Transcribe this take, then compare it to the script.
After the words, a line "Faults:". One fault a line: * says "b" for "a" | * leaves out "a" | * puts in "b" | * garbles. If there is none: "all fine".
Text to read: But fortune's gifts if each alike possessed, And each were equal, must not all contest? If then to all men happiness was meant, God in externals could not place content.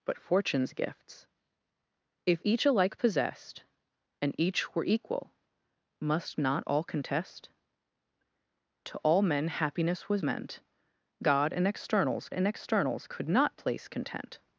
But fortune's gifts if each alike possessed, And each were equal, must not all contest? To all men happiness was meant, God in externals in externals could not place content.
Faults:
* leaves out "If then"
* puts in "in externals"